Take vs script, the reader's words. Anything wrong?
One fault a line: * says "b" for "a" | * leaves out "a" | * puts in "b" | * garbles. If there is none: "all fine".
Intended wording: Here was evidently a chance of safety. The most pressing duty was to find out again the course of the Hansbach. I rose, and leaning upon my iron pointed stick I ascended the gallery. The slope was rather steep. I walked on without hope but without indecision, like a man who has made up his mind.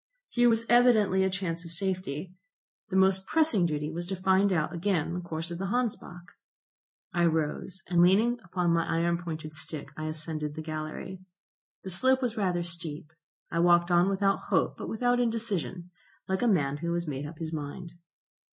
all fine